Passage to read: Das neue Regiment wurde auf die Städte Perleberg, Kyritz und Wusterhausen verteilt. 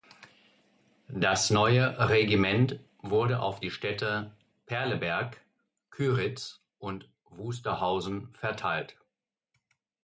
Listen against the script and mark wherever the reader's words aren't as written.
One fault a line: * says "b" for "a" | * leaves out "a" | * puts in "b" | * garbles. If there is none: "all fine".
all fine